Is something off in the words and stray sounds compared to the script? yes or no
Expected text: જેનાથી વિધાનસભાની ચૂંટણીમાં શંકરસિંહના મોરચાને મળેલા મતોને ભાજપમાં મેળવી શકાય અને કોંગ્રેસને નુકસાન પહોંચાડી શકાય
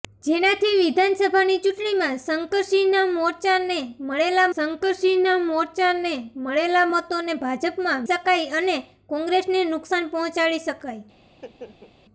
yes